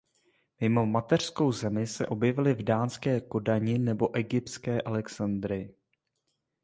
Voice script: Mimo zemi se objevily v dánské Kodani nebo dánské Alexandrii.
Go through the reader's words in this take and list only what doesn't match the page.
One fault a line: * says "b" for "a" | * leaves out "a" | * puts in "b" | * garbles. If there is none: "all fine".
* puts in "mateřskou"
* says "egyptské" for "dánské"